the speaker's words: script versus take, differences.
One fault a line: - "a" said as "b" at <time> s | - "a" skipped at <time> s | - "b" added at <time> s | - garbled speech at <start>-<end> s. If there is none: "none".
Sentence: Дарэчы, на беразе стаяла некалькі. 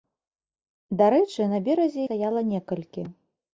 none